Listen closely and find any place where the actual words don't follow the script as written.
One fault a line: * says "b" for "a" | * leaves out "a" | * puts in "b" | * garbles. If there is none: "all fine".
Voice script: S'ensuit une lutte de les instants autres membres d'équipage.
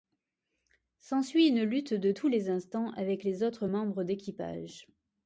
* puts in "tous"
* puts in "avec les"